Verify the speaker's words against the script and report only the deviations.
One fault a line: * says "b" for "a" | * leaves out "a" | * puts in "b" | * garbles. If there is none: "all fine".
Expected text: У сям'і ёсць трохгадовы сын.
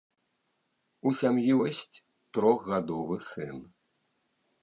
all fine